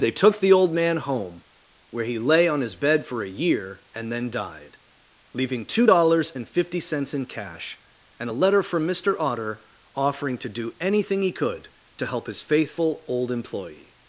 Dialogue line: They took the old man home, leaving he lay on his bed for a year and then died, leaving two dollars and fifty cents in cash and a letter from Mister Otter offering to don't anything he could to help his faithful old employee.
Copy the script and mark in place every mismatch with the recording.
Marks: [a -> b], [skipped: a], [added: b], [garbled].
They took the old man home, [leaving -> where] he lay on his bed for a year and then died, leaving two dollars and fifty cents in cash and a letter from Mister Otter offering to [don't -> do] anything he could to help his faithful old employee.